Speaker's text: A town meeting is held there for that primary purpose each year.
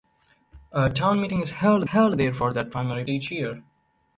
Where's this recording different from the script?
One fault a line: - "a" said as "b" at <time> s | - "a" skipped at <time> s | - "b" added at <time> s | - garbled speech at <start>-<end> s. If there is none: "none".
- "held" added at 1.8 s
- "purpose" skipped at 3.0 s